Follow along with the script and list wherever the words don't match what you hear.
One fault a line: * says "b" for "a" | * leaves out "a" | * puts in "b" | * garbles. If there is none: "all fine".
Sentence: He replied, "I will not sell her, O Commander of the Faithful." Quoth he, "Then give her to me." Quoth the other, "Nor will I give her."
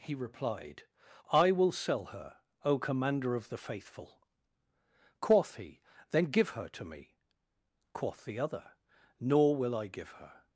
* leaves out "not"